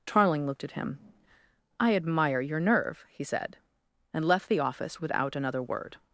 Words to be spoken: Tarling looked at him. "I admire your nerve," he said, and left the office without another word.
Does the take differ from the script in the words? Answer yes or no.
no